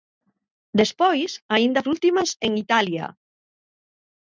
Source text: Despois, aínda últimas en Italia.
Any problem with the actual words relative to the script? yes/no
no